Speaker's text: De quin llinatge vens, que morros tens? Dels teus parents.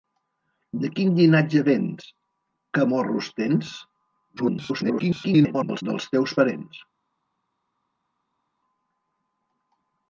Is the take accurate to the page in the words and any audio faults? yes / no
no